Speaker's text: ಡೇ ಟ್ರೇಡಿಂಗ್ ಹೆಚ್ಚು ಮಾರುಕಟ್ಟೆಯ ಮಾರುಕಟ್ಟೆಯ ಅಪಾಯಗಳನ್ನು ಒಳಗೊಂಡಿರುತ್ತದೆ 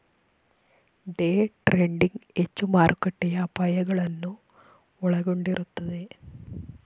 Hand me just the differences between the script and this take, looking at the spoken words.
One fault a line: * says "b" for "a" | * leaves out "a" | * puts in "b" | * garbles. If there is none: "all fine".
* leaves out "ಮಾರುಕಟ್ಟೆಯ"